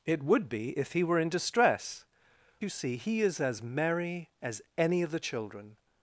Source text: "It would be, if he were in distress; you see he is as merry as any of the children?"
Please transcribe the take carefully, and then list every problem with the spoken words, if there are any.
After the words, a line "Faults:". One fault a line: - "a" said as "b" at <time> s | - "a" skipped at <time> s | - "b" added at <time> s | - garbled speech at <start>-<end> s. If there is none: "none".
"It would be, if he were in distress; you see he is as merry as any of the children?"
Faults:
none